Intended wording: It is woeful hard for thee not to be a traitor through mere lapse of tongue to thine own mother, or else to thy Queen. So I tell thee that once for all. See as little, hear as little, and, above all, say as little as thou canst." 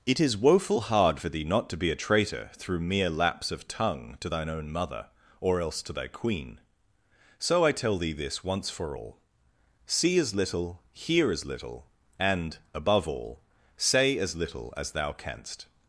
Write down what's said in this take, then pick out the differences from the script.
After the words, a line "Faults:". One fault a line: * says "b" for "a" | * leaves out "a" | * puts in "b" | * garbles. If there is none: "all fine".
It is woeful hard for thee not to be a traitor through mere lapse of tongue to thine own mother, or else to thy Queen. So I tell thee this once for all. See as little, hear as little, and, above all, say as little as thou canst."
Faults:
* says "this" for "that"